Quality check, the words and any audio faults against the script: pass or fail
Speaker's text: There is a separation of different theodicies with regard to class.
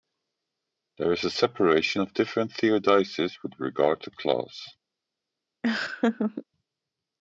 fail